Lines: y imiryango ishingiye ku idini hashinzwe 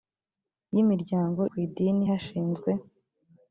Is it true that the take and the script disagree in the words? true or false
true